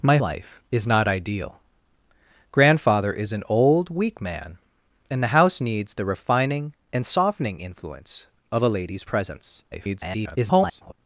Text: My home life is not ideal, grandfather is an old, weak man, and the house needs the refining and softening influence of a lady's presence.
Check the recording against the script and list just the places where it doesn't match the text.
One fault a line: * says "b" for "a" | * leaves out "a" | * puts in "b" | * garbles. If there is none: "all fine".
* leaves out "home"
* garbles